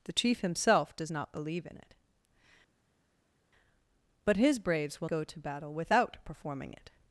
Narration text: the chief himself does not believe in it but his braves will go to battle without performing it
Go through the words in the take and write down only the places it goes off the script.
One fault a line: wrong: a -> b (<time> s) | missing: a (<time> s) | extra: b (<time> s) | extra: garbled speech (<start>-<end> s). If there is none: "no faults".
no faults